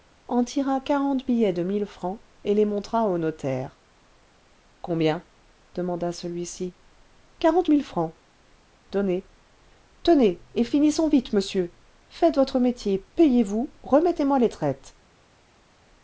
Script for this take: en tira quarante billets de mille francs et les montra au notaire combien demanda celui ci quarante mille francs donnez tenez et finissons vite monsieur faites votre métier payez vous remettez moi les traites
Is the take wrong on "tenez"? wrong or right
right